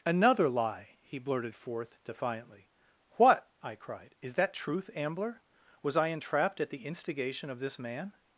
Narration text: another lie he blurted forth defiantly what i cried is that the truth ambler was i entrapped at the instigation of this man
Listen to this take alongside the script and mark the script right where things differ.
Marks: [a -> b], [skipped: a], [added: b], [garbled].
another lie he blurted forth defiantly what i cried is that [skipped: the] truth ambler was i entrapped at the instigation of this man